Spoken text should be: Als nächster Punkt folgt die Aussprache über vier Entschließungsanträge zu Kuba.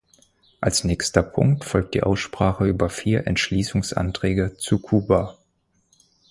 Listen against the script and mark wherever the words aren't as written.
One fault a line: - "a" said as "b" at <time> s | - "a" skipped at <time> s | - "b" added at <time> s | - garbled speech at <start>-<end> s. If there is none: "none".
none